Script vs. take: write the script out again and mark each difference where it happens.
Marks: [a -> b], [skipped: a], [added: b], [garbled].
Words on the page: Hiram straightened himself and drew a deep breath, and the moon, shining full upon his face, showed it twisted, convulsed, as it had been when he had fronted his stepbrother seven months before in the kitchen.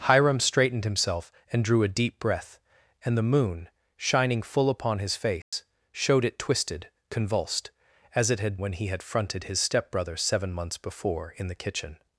Hiram straightened himself and drew a deep breath, and the moon, shining full upon his face, showed it twisted, convulsed, as it had [skipped: been] when he had fronted his stepbrother seven months before in the kitchen.